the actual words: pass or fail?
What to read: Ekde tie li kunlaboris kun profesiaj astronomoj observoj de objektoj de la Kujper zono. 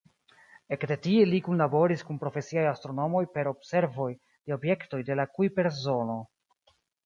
fail